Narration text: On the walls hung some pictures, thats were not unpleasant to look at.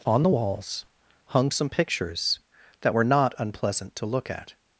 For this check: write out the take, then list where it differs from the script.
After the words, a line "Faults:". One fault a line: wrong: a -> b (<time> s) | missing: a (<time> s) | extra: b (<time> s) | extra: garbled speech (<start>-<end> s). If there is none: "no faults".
On the walls hung some pictures, that were not unpleasant to look at.
Faults:
wrong: thats -> that (2.8 s)